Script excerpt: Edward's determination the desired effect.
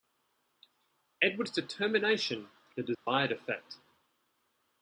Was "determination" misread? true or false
false